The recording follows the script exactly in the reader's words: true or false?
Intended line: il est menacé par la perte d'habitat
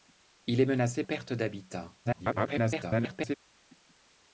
false